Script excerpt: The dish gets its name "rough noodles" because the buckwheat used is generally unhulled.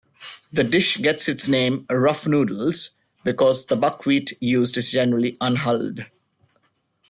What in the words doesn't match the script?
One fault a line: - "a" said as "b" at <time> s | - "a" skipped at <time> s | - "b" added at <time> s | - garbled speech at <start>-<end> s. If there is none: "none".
none